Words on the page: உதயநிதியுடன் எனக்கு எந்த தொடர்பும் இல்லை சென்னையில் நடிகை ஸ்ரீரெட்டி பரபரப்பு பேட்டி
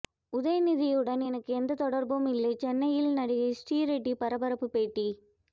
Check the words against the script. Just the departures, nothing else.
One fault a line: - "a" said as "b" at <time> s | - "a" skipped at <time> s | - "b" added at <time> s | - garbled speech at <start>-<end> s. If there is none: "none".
none